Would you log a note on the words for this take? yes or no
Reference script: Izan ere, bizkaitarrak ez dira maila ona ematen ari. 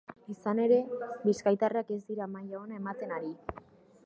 no